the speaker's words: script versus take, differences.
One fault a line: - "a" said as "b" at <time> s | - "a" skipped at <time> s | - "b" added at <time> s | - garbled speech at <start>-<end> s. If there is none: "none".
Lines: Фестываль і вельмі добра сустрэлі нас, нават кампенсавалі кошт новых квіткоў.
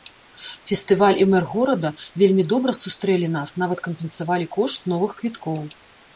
- "мэр горада" added at 1.3 s